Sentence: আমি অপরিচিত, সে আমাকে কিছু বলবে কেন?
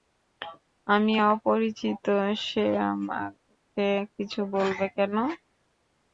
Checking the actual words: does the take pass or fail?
pass